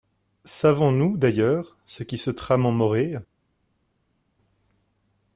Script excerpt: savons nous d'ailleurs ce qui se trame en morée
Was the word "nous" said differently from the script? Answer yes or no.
no